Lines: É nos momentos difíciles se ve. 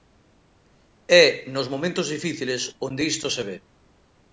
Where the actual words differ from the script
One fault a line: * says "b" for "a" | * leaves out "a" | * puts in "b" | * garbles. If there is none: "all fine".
* puts in "onde isto"